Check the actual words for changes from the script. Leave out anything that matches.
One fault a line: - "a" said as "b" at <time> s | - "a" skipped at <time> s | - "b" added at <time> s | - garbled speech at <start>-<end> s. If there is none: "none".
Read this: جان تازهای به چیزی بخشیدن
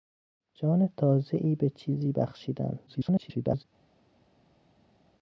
- garbled speech at 2.9-3.6 s